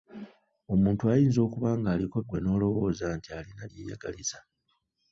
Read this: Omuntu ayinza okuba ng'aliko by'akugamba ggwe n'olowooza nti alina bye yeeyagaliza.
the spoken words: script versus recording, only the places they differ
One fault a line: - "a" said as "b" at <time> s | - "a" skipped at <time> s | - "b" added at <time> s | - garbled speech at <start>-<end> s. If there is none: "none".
- "by'akugamba" skipped at 2.2 s
- "bye" skipped at 3.6 s